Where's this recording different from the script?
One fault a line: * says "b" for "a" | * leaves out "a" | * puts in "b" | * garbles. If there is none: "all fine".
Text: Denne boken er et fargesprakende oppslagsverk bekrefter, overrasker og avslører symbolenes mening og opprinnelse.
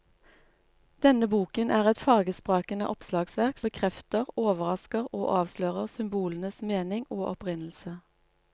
all fine